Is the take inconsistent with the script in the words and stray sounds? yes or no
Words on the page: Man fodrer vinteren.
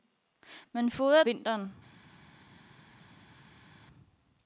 no